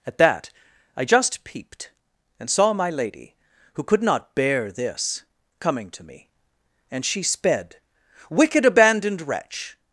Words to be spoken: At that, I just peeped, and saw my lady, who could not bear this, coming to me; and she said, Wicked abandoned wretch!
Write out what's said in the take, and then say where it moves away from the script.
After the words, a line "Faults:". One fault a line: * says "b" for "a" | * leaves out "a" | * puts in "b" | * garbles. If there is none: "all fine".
At that, I just peeped, and saw my lady, who could not bear this, coming to me; and she sped, Wicked abandoned wretch!
Faults:
* says "sped" for "said"